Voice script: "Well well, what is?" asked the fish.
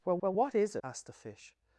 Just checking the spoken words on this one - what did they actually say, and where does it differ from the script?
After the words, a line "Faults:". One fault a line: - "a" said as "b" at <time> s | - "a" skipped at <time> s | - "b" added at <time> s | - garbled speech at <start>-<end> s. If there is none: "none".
"Well well, what is?" asked the fish.
Faults:
none